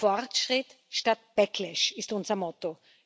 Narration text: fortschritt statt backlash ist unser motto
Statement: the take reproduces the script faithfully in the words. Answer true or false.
true